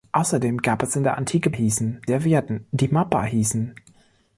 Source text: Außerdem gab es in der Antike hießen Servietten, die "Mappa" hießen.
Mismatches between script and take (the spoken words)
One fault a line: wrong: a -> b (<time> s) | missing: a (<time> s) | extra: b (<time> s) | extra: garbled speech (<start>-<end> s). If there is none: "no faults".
no faults